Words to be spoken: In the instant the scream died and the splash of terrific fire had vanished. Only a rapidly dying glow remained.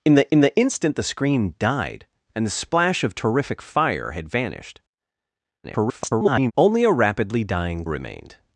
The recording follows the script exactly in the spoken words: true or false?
false